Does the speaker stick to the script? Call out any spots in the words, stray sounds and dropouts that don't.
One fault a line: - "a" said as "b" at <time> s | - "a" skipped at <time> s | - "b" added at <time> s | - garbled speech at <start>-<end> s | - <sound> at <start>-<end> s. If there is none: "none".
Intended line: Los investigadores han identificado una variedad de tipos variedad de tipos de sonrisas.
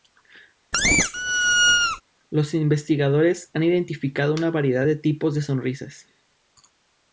- squeak at 0.7-2.0 s
- "variedad de tipos" skipped at 5.4 s